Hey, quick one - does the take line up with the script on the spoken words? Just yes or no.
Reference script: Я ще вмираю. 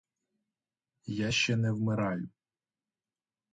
no